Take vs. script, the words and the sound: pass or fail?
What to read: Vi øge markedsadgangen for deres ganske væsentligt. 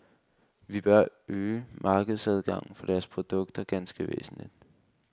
fail